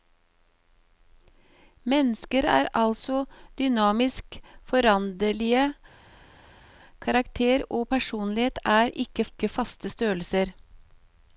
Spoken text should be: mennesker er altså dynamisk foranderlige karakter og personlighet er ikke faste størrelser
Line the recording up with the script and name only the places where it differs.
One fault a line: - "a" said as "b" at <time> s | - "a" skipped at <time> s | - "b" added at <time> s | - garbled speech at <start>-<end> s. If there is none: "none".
- "ikke" added at 9.3 s